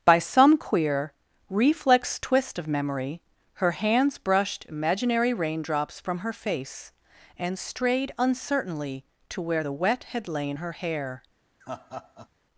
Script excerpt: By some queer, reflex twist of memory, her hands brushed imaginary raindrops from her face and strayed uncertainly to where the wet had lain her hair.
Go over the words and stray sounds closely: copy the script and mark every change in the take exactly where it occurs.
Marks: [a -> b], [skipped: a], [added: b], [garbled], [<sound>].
By some queer, reflex twist of memory, her hands brushed imaginary raindrops from her face and strayed uncertainly to where the wet had lain her hair. [laugh]